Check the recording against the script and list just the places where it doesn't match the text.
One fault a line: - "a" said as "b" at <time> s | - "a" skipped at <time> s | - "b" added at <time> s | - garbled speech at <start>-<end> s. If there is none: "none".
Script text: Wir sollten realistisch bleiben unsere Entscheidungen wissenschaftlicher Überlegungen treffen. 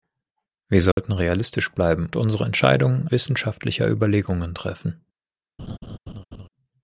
none